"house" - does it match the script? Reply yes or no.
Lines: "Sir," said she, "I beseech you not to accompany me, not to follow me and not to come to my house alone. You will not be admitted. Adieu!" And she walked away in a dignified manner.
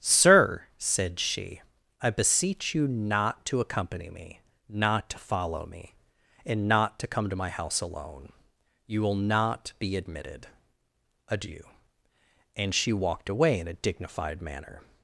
yes